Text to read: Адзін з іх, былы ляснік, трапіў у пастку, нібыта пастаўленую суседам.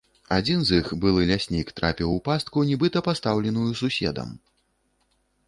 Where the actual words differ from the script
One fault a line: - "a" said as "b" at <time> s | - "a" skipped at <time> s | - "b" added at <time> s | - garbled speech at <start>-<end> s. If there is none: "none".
none